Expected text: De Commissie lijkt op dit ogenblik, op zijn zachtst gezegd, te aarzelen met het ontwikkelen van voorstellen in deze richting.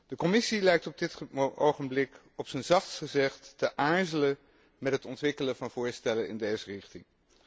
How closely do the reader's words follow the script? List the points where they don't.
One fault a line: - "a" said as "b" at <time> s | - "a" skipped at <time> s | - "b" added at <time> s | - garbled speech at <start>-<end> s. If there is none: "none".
none